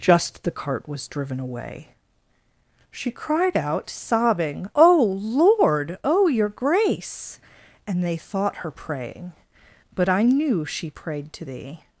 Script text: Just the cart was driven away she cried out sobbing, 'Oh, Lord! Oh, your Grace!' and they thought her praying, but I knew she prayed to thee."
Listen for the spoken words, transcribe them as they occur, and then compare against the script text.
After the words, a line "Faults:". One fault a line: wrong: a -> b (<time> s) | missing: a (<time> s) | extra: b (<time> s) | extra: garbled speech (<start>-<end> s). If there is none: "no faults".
Just the cart was driven away she cried out sobbing, 'Oh, Lord! Oh, your Grace!' and they thought her praying, but I knew she prayed to thee."
Faults:
no faults